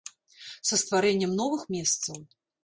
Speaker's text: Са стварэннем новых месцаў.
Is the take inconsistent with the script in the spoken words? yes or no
no